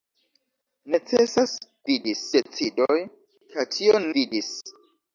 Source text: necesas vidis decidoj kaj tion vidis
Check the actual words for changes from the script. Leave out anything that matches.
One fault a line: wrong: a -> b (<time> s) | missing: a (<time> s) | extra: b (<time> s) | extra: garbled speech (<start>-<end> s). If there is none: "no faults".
no faults